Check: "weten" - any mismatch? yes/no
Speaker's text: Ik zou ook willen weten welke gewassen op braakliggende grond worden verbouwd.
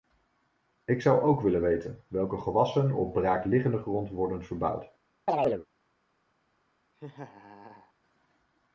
no